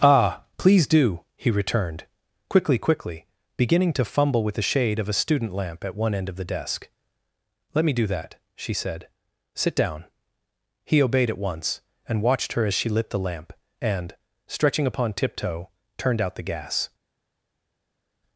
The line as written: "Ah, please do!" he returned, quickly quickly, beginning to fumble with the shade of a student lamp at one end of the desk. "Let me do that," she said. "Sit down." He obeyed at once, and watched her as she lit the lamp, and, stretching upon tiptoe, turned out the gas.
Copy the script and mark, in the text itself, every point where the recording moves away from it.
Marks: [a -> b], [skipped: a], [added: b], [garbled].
"Ah, please do!" he returned, quickly quickly, beginning to fumble with the shade of a student lamp at one end of the desk. "Let me do that," she said. "Sit down." He obeyed at once, and watched her as she lit the lamp, and, stretching upon tiptoe, turned out the gas.